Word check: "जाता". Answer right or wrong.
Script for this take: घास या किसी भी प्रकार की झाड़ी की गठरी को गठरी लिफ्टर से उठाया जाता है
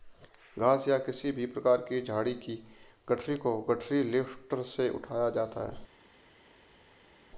right